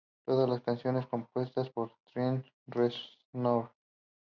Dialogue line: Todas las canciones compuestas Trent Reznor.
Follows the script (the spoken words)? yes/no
no